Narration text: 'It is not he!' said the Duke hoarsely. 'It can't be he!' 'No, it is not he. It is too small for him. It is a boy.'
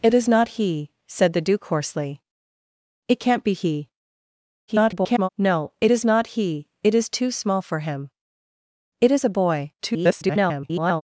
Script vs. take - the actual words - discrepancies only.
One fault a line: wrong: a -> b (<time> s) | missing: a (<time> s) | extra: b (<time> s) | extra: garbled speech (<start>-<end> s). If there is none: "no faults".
extra: garbled speech (4.7-5.3 s)
extra: garbled speech (9.8-11.0 s)